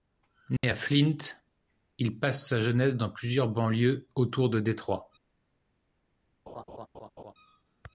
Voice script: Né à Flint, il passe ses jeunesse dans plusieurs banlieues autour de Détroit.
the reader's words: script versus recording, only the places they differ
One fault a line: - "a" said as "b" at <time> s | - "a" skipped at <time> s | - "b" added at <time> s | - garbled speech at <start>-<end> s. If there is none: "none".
- "ses" said as "sa" at 2.5 s